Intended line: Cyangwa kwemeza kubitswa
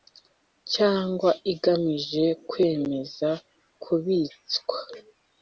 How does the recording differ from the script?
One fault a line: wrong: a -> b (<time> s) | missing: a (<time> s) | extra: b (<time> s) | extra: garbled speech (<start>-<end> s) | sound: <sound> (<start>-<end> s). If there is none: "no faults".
extra: igamije (1.5 s)